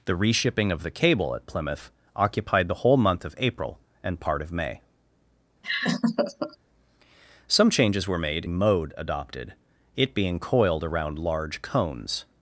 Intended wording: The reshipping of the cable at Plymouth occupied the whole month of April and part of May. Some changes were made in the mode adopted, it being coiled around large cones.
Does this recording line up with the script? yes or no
no